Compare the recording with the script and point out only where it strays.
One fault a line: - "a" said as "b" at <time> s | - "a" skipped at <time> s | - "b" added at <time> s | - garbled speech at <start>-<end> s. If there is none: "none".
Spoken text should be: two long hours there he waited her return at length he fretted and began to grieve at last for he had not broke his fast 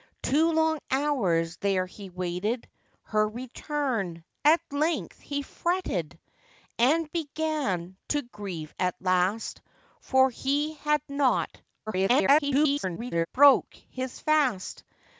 - garbled speech at 11.9-13.3 s